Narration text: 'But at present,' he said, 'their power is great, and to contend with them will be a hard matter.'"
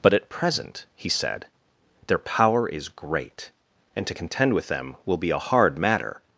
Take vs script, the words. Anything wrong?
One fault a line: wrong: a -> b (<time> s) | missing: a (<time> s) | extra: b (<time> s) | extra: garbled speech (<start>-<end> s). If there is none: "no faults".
no faults